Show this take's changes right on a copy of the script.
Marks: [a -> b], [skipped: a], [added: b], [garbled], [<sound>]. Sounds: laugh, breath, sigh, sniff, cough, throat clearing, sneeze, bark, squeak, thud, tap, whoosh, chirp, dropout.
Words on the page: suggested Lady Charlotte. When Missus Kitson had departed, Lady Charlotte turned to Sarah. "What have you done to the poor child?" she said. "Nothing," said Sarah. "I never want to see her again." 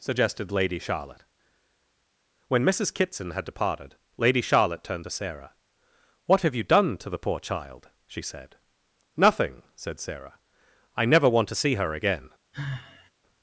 suggested Lady Charlotte. When Missus Kitson had departed, Lady Charlotte turned to Sarah. "What have you done to the poor child?" she said. "Nothing," said Sarah. "I never want to see her again." [sigh]